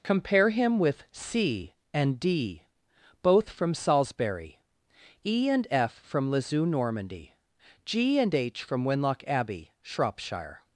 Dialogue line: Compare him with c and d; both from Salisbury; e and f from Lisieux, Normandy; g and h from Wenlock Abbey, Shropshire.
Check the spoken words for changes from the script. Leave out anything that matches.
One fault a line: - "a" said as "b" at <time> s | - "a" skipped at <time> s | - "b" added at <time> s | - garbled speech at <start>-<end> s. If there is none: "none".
none